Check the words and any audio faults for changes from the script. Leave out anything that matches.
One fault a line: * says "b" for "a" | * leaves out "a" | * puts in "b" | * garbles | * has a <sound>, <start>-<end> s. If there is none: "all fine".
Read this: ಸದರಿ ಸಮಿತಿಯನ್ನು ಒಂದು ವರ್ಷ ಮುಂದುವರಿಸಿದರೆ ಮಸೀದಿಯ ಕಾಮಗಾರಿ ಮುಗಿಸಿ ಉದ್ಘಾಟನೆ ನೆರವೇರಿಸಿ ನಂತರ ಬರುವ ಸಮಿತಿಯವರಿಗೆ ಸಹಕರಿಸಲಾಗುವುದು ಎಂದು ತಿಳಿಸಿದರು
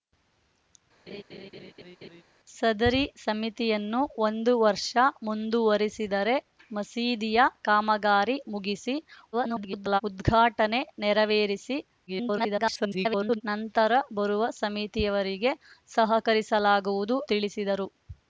* has a laugh, 1.1-2.2 s
* garbles
* garbles
* leaves out "ಎಂದು"